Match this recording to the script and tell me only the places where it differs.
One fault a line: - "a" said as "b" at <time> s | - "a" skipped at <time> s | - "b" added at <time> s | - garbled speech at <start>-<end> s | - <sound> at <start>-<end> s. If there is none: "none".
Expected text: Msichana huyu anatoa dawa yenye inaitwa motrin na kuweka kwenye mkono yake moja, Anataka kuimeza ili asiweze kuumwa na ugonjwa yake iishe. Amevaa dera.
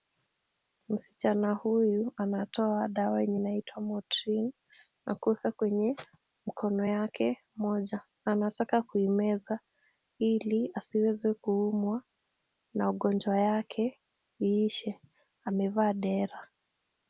none